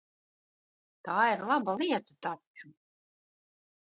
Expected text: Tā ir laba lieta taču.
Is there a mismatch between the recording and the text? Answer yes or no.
no